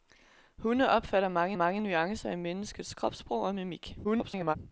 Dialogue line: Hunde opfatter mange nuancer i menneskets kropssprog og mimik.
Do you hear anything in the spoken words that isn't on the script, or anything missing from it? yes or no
yes